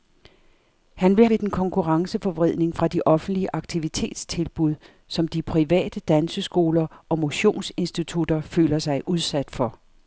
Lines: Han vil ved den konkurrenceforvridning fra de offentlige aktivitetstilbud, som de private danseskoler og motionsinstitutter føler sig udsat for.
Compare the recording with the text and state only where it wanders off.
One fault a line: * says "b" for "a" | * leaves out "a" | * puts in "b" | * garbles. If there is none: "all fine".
all fine